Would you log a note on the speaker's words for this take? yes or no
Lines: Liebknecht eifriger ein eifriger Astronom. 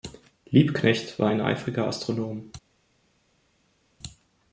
yes